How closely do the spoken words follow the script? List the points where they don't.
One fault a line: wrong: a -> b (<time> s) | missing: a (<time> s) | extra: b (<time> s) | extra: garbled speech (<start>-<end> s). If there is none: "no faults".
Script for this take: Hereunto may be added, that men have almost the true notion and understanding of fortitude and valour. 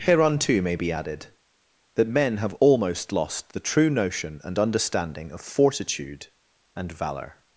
extra: lost (3.1 s)